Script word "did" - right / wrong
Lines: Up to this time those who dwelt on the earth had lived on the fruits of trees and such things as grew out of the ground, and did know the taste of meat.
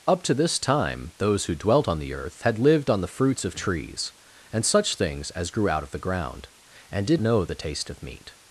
right